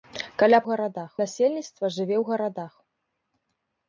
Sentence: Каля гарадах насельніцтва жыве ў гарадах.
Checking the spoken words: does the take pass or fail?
pass